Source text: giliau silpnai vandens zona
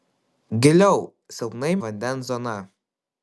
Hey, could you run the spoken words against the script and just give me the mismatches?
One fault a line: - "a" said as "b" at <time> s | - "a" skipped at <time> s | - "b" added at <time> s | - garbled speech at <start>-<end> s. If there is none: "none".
none